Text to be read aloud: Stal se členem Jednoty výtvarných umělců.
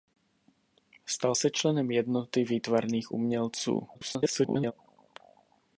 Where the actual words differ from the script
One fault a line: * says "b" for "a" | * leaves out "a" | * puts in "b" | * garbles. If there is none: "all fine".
* garbles